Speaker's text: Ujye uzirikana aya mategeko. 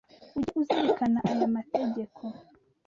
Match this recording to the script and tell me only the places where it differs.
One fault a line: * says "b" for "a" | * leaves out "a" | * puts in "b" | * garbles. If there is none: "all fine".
all fine